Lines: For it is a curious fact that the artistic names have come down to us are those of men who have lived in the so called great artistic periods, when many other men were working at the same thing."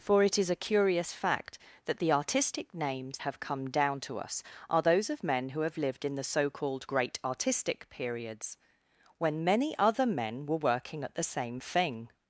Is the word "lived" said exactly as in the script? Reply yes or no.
yes